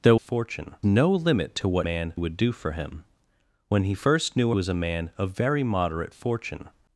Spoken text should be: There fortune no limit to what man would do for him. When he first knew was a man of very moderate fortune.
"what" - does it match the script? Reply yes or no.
yes